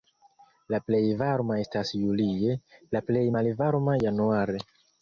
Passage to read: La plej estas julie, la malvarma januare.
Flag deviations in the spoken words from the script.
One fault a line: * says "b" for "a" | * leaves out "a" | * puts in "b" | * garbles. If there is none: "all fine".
* puts in "varma"
* puts in "plej"